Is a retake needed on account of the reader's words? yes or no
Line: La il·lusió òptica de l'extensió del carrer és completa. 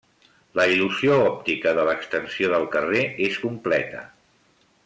no